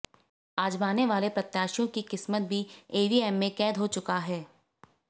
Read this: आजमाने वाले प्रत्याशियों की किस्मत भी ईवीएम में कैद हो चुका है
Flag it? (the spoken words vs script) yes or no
no